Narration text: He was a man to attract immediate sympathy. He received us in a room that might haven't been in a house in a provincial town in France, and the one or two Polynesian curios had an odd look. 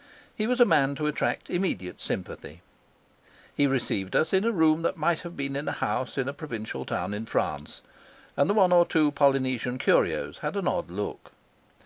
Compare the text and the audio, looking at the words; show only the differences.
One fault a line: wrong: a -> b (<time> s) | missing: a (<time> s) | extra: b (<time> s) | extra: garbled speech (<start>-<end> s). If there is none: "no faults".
wrong: haven't -> have (5.2 s)